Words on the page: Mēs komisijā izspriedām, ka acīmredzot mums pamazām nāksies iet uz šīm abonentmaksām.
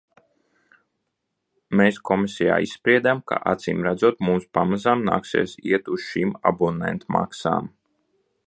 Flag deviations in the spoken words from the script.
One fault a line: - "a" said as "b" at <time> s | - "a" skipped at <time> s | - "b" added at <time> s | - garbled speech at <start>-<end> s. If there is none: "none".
none